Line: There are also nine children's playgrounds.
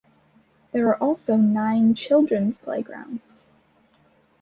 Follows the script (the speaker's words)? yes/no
yes